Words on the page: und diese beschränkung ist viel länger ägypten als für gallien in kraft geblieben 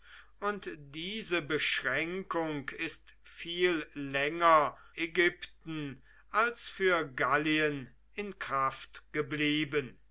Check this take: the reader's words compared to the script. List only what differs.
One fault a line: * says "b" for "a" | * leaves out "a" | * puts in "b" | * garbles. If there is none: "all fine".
all fine